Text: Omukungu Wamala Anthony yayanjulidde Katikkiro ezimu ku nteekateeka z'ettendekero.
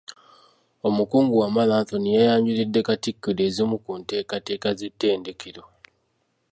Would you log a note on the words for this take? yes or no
no